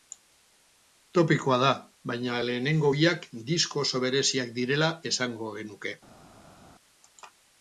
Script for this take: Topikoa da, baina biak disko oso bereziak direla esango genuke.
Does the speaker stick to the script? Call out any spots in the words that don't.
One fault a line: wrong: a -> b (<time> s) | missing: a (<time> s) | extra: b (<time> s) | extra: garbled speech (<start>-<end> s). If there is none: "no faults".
extra: lehenengo (2.4 s)